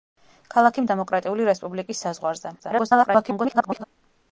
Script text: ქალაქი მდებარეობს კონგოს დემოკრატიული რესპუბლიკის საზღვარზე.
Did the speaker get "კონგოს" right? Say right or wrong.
wrong